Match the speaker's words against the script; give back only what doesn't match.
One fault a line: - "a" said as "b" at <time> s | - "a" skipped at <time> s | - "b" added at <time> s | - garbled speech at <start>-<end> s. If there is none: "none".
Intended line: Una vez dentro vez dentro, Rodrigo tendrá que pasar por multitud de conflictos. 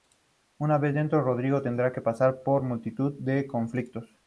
- "vez dentro" skipped at 1.2 s